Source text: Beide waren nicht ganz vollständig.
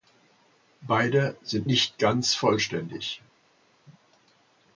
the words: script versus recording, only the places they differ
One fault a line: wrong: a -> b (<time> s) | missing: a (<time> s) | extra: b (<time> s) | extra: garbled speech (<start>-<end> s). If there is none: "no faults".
wrong: waren -> sind (1.4 s)